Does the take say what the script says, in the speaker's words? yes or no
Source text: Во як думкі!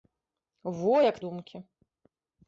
yes